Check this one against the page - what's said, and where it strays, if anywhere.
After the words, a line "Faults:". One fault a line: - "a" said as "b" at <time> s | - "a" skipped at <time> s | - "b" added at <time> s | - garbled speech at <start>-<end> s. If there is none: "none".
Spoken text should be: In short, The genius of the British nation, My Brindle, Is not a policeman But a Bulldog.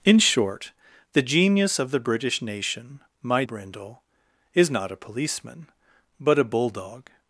In short, The genius of the British nation, My Brindle, Is not a policeman But a Bulldog.
Faults:
none